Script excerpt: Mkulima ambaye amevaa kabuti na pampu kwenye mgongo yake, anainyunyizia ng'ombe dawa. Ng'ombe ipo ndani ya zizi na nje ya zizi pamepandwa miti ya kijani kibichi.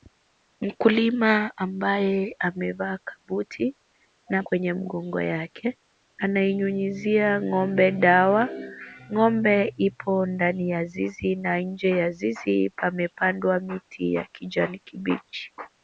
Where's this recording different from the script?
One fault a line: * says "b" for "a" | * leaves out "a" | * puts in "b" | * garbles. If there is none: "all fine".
* leaves out "pampu"